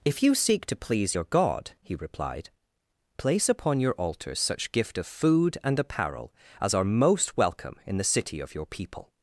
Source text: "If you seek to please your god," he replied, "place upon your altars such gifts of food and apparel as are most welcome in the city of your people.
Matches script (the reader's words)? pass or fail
fail